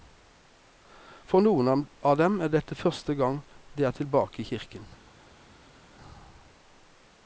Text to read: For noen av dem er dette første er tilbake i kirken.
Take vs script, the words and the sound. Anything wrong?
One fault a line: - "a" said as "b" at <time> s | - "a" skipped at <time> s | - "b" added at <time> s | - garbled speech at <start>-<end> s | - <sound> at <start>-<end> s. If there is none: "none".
- "gang de" added at 3.2 s